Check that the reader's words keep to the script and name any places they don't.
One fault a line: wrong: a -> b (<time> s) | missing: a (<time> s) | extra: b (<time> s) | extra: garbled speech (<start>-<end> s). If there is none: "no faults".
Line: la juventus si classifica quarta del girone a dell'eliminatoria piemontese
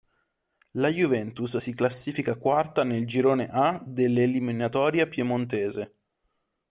wrong: del -> nel (2.8 s)